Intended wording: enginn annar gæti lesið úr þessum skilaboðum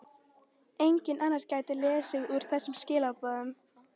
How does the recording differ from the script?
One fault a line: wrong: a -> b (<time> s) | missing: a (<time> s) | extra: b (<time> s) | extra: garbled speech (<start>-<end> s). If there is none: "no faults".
no faults